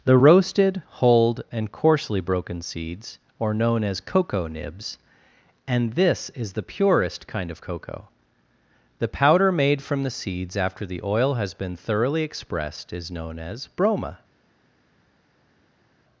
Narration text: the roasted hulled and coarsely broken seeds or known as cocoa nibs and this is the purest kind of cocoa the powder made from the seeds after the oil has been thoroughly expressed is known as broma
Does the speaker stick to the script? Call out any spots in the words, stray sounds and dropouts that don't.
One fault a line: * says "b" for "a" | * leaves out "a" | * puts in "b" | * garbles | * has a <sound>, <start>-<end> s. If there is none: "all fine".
all fine